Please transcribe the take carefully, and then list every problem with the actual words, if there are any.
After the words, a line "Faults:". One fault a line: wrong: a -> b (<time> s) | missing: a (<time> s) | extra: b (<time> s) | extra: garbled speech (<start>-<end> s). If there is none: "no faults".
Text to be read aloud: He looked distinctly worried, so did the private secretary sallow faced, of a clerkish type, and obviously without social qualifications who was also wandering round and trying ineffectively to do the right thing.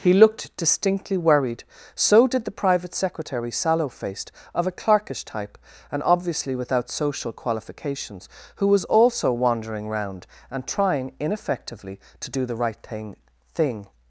He looked distinctly worried, so did the private secretary sallow faced, of a clerkish type, and obviously without social qualifications who was also wandering round and trying ineffectively to do the right thing thing.
Faults:
extra: thing (13.5 s)